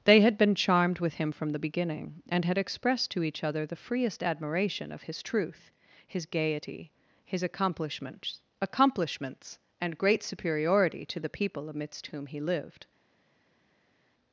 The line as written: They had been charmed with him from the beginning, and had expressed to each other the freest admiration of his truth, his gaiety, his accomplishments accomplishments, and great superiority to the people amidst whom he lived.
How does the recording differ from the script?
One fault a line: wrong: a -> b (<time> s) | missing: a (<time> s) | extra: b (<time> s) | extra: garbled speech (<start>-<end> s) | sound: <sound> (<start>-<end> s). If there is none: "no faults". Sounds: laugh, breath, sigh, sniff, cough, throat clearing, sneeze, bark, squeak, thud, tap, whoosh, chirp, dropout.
no faults